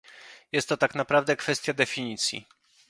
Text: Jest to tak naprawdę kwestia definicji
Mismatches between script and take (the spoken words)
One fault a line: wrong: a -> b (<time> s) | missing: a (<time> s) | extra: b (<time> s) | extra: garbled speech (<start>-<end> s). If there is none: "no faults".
no faults